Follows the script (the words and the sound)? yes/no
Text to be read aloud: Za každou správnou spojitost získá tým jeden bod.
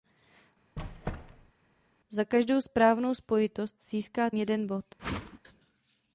no